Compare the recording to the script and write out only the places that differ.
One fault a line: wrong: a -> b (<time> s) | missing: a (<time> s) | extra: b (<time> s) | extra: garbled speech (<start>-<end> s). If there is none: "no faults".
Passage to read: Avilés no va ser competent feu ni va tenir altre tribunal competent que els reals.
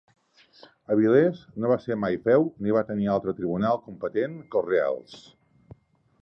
wrong: competent -> mai (2.0 s)